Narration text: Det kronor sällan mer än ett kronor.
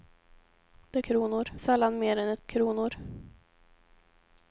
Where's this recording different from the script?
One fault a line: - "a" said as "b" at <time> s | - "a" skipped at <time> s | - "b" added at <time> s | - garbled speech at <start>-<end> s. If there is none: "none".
none